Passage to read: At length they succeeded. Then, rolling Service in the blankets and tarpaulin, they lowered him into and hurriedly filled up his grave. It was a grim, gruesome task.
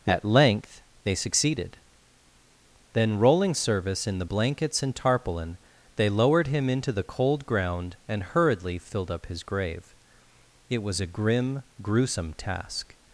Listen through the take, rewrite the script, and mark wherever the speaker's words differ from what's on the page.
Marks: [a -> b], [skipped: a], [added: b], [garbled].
At length they succeeded. Then, rolling Service in the blankets and tarpaulin, they lowered him into [added: the cold ground] and hurriedly filled up his grave. It was a grim, gruesome task.